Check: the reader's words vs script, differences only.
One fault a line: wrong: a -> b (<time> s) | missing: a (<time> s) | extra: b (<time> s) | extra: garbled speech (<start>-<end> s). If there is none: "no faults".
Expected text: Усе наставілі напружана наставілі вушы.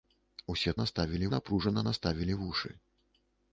no faults